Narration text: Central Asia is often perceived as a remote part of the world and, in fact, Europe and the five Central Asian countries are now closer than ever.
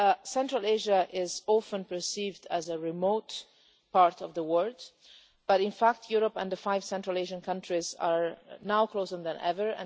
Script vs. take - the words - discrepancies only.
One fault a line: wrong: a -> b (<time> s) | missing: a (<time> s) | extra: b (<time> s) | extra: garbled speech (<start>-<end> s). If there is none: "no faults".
wrong: and -> but (5.5 s)